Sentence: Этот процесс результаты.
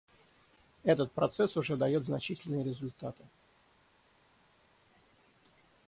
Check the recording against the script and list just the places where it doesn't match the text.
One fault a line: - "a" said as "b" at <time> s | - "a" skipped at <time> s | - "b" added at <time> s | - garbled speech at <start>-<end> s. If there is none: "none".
- "уже дает значительные" added at 1.6 s